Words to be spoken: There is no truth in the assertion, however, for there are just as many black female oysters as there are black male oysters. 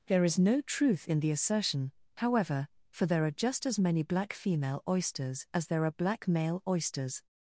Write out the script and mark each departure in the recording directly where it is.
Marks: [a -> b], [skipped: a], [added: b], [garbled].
There is no truth in the assertion, however, for there are just as many black female oysters as there are black male oysters.